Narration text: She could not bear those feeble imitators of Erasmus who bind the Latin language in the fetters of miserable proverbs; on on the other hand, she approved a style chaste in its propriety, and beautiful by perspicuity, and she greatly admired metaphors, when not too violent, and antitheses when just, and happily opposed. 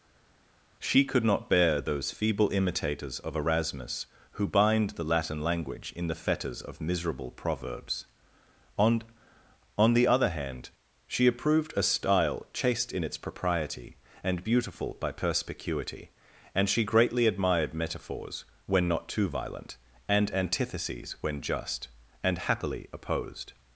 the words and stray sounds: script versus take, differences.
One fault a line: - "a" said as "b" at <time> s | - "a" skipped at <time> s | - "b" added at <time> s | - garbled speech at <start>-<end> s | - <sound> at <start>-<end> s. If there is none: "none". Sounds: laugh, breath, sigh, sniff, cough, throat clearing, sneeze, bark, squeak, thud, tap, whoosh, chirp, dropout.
none